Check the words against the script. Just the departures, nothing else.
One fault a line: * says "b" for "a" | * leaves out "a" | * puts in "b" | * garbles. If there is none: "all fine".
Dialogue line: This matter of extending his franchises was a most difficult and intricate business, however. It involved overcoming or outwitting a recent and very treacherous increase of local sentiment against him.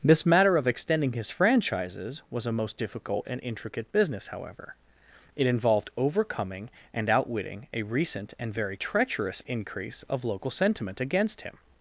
* says "and" for "or"